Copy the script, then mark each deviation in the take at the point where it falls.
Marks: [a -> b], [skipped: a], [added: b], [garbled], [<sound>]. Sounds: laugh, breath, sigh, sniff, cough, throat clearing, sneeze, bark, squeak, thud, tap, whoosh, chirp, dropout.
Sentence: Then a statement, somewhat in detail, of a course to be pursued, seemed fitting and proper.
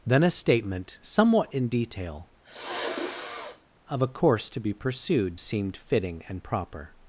Then a statement, somewhat in detail, [sniff] of a course to be pursued, seemed fitting and proper.